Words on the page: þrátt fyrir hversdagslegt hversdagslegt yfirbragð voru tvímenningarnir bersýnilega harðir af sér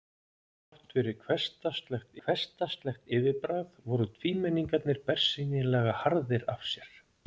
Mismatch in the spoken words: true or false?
false